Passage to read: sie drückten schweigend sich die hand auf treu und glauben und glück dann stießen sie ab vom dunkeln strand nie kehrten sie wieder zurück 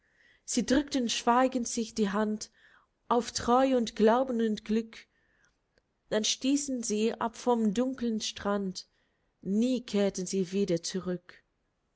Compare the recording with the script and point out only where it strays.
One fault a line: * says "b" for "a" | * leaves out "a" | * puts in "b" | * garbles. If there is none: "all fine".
all fine